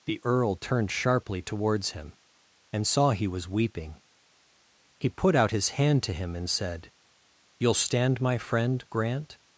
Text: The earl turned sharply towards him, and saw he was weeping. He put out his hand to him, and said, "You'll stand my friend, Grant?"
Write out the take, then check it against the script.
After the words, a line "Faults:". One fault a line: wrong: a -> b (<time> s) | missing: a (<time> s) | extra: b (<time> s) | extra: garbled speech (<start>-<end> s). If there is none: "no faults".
The earl turned sharply towards him, and saw he was weeping. He put out his hand to him, and said, "You'll stand my friend, Grant?"
Faults:
no faults